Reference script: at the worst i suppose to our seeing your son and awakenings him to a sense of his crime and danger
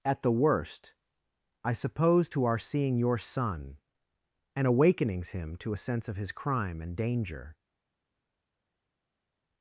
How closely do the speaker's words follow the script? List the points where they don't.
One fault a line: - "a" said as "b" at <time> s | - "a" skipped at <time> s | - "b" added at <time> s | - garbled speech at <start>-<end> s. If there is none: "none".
none